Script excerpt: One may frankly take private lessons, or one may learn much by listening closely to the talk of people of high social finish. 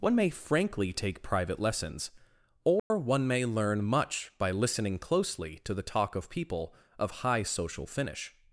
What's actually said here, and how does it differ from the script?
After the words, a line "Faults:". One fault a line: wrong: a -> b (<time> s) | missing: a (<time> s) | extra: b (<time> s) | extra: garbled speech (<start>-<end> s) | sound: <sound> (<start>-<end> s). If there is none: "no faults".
One may frankly take private lessons, or one may learn much by listening closely to the talk of people of high social finish.
Faults:
sound: dropout (2.8-2.9 s)